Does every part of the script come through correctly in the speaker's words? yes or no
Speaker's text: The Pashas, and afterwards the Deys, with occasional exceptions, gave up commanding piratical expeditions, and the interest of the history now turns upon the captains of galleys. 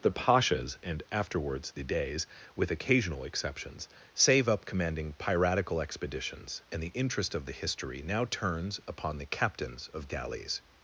no